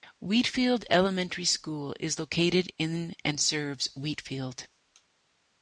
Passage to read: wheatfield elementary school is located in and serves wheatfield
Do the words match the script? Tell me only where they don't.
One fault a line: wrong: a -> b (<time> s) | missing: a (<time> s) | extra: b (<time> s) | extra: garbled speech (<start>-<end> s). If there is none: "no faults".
no faults